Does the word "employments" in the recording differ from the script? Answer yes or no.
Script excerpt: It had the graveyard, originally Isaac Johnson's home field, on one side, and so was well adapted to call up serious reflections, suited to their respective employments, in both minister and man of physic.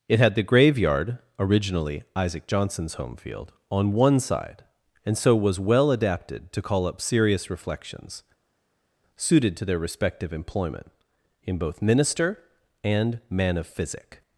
yes